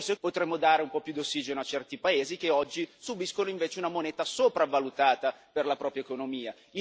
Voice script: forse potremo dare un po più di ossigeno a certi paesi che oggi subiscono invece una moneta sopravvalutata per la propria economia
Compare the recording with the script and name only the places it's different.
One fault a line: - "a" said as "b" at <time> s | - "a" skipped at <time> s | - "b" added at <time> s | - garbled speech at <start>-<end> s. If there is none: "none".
none